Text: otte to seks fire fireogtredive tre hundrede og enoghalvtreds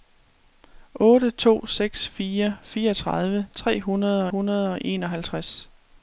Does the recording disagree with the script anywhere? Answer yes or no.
yes